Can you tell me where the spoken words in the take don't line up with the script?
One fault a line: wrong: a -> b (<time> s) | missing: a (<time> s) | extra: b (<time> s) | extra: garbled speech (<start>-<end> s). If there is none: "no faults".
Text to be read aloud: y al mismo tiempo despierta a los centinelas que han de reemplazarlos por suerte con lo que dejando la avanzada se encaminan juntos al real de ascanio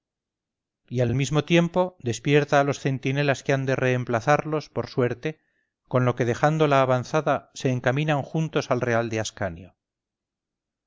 extra: al (1.1 s)